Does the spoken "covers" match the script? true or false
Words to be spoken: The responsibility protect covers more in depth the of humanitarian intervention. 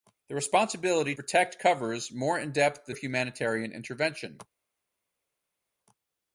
true